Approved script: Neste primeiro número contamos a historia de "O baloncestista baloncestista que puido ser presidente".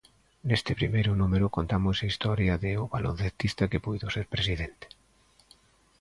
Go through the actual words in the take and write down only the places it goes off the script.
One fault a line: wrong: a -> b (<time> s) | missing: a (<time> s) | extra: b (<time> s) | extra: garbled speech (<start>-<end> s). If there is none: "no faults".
missing: baloncestista (3.7 s)